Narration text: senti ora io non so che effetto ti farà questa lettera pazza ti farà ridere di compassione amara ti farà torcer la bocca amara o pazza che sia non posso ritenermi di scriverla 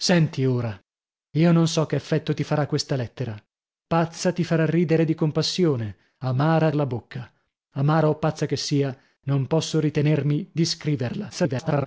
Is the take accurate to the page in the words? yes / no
no